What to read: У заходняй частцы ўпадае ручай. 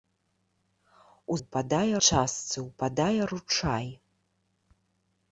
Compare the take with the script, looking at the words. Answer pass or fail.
fail